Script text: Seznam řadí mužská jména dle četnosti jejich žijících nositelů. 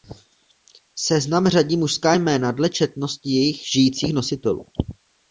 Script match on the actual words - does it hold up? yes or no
yes